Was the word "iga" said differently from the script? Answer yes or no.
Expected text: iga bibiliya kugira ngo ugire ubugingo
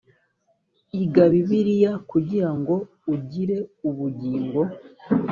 no